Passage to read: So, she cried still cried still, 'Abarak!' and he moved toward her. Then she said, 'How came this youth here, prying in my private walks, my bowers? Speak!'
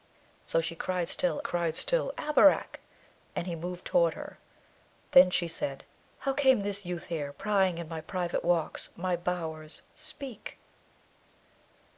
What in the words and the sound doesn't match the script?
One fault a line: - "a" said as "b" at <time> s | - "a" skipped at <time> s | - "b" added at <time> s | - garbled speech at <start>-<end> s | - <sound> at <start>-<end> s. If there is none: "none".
none